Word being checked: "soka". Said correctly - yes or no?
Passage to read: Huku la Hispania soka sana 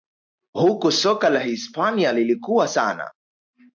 no